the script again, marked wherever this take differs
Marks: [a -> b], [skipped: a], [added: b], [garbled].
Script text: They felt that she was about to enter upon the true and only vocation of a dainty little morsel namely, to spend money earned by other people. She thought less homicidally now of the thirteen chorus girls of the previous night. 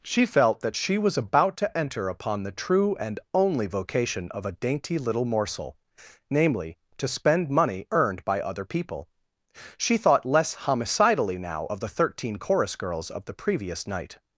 [They -> She] felt that she was about to enter upon the true and only vocation of a dainty little morsel namely, to spend money earned by other people. She thought less homicidally now of the thirteen chorus girls of the previous night.